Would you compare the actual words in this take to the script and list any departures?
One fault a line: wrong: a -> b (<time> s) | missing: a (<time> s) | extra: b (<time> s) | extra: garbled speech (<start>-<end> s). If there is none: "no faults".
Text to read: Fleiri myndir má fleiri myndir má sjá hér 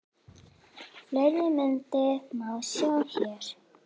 missing: fleiri myndir má (2.5 s)